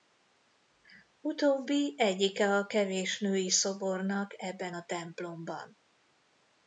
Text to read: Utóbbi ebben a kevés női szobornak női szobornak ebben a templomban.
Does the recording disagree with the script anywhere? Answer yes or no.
yes